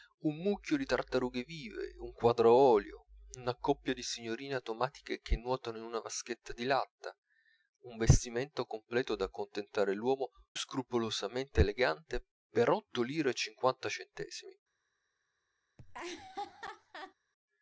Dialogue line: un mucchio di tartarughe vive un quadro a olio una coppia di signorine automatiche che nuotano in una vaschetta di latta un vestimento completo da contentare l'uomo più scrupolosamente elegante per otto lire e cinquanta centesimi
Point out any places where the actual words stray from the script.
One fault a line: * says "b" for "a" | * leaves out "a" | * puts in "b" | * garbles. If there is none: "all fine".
* leaves out "più"